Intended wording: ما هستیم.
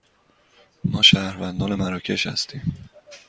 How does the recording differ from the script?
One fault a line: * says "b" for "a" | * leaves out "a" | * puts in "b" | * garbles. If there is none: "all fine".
* puts in "شهروندان مراکش"